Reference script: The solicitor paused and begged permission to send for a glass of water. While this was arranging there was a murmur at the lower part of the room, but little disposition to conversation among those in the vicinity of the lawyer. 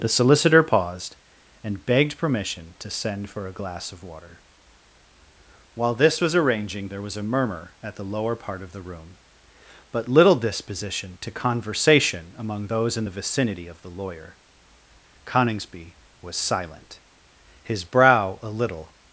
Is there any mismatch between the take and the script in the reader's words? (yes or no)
yes